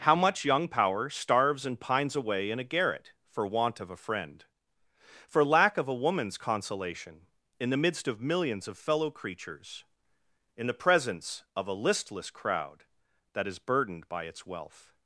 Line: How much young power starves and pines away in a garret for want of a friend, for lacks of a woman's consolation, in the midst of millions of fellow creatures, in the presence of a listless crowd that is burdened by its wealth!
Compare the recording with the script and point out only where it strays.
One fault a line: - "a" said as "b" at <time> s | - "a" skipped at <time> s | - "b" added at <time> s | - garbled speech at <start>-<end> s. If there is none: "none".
- "lacks" said as "lack" at 5.5 s